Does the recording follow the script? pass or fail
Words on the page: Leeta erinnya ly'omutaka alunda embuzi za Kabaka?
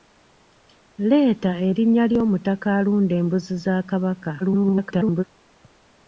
fail